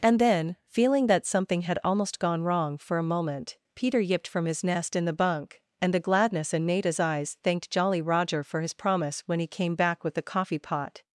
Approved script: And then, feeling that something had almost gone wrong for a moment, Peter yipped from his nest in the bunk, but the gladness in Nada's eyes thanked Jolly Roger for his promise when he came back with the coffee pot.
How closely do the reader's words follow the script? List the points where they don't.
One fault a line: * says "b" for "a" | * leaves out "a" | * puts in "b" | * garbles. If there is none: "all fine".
* says "and" for "but"